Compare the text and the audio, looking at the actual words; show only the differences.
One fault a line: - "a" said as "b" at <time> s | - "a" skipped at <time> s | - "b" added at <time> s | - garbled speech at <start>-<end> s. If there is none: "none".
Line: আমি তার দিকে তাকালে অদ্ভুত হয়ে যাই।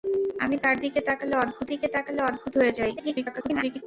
- "দিকে তাকালে অদ্ভুত" added at 1.7 s
- garbled speech at 3.0-3.8 s